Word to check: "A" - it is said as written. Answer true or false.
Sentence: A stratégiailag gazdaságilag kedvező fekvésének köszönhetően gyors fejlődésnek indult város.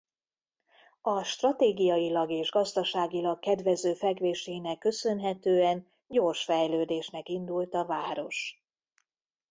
true